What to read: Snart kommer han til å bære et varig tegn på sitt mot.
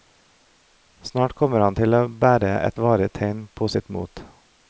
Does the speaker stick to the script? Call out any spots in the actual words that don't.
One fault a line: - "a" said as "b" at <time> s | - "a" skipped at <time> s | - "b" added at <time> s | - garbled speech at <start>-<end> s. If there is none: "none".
none